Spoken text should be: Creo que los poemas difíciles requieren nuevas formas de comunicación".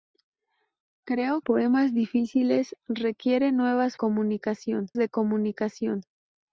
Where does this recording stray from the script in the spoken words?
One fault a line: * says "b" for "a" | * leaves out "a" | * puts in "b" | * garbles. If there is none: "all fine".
* leaves out "que los"
* says "comunicación" for "formas"